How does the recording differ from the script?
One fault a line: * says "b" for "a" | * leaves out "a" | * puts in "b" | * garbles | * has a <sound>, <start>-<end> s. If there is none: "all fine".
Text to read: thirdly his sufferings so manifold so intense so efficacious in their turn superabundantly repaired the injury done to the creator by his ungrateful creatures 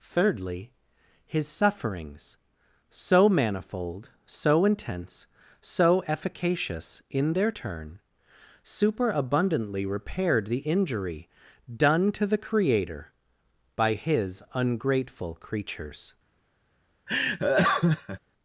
* has a laugh, 17.1-18.2 s